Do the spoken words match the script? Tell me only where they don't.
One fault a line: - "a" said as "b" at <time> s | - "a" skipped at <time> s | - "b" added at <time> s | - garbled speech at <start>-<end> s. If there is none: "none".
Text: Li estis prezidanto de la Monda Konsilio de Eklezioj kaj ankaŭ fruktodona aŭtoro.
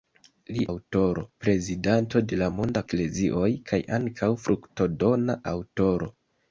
- "estis" said as "aŭtoro" at 0.7 s
- "Konsilio de" skipped at 2.8 s